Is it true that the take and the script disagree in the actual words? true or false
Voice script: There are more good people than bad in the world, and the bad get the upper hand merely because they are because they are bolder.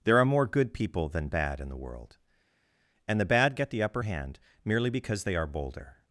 true